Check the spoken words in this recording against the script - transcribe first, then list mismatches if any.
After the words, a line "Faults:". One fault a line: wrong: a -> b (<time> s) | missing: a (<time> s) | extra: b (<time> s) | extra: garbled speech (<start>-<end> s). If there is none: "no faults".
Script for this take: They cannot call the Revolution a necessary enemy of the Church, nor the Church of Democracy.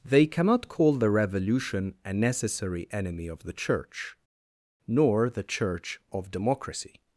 They cannot call the Revolution a necessary enemy of the Church, nor the Church of Democracy.
Faults:
no faults